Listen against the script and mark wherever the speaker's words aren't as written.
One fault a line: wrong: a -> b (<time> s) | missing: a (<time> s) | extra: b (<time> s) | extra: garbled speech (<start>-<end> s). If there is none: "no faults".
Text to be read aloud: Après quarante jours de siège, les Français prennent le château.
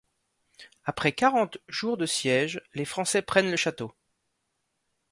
no faults